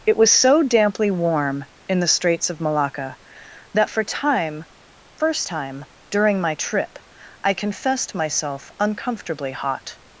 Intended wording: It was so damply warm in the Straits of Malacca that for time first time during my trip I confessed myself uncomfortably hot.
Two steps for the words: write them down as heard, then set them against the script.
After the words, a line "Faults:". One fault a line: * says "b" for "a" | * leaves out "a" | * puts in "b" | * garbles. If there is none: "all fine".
It was so damply warm in the Straits of Malacca that for time first time during my trip I confessed myself uncomfortably hot.
Faults:
all fine